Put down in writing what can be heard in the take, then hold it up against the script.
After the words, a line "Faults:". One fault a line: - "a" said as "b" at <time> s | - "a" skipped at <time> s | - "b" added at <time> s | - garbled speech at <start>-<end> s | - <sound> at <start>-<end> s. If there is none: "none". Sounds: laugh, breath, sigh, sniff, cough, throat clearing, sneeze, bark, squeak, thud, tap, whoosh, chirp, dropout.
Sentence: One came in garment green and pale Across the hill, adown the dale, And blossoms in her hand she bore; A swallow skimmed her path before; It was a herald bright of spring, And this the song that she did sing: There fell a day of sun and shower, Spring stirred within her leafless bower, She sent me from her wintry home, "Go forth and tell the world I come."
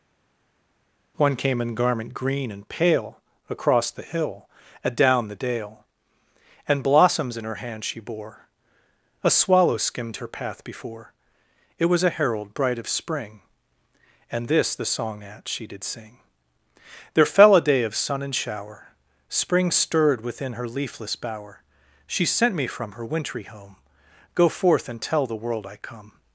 One came in garment green and pale Across the hill, adown the dale, And blossoms in her hand she bore; A swallow skimmed her path before; It was a herald bright of spring, And this the song at she did sing: There fell a day of sun and shower, Spring stirred within her leafless bower, She sent me from her wintry home, "Go forth and tell the world I come."
Faults:
- "that" said as "at" at 15.2 s